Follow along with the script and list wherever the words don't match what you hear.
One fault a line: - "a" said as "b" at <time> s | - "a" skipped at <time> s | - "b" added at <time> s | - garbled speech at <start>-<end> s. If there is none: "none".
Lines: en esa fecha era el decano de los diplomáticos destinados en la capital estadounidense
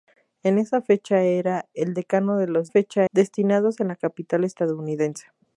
- "diplomáticos" said as "fecha" at 2.7 s